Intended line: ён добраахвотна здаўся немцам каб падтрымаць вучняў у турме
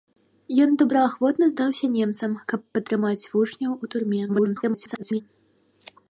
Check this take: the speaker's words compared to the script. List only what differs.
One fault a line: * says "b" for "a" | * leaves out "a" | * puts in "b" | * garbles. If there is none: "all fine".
* garbles